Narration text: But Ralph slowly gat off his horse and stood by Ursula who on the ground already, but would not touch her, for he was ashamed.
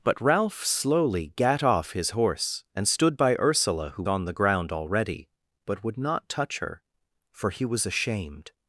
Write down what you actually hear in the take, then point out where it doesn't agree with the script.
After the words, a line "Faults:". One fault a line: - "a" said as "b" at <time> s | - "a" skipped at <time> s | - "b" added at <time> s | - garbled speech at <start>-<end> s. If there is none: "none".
But Ralph slowly gat off his horse and stood by Ursula who on the ground already, but would not touch her, for he was ashamed.
Faults:
none